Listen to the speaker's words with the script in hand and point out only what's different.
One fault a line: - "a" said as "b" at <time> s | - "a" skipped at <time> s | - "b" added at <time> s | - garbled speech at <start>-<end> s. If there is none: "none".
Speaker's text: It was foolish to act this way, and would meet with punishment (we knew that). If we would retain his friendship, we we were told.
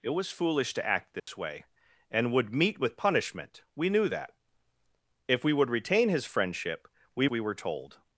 none